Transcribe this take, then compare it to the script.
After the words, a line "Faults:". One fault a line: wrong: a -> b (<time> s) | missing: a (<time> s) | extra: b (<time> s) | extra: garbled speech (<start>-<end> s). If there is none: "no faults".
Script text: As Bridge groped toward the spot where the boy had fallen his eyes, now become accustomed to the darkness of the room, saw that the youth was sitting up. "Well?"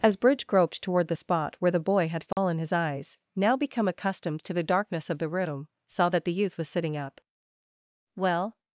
As Bridge groped toward the spot where the boy had fallen his eyes, now become accustomed to the darkness of the room, saw that the youth was sitting up. "Well?"
Faults:
no faults